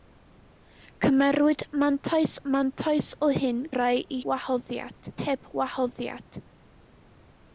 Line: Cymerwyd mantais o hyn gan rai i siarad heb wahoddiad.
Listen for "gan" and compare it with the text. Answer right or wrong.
wrong